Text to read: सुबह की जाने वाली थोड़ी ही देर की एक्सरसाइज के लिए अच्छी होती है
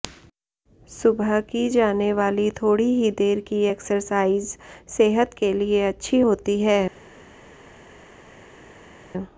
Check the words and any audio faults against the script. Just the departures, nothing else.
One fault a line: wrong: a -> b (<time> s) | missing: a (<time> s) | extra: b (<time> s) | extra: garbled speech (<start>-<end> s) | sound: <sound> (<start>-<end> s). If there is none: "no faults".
extra: सेहत (5.0 s)